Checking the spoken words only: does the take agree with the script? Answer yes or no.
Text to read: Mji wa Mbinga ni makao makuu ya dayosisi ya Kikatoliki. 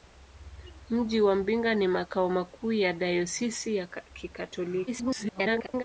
no